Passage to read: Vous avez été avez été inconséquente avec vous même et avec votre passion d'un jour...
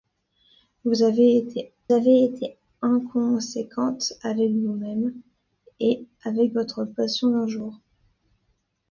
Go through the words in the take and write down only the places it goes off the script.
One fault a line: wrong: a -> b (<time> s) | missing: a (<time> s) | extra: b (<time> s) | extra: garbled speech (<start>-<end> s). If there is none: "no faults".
no faults